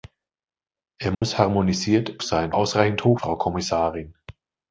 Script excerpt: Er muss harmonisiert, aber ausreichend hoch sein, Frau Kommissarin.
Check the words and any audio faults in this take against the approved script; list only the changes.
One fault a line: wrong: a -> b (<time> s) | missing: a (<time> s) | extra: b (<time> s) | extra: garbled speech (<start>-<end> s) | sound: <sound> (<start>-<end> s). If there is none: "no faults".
sound: dropout (1.1-1.2 s)
wrong: aber -> sein (2.2 s)
missing: sein (3.2 s)